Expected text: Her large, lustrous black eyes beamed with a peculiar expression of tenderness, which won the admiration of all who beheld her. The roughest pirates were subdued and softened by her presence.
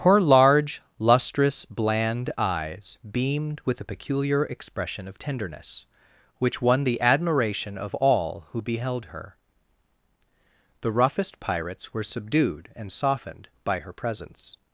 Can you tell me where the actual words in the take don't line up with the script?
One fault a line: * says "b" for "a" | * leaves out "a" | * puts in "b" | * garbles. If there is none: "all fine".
* says "bland" for "black"